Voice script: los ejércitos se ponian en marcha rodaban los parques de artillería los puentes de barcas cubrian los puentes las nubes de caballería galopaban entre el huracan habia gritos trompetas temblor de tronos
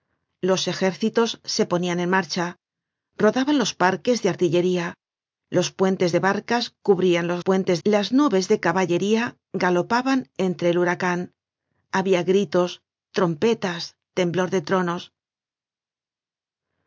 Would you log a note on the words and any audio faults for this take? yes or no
no